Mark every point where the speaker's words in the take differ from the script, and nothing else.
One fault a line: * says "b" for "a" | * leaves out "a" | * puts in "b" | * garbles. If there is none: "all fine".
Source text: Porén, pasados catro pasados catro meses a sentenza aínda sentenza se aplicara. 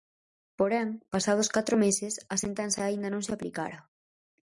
* leaves out "pasados catro"
* says "non" for "sentenza"